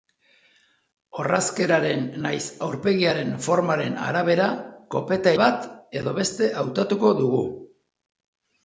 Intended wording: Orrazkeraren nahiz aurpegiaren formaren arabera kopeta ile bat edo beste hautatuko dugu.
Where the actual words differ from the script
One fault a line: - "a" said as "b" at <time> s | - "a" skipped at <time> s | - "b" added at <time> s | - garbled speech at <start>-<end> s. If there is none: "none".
- "ile" skipped at 5.3 s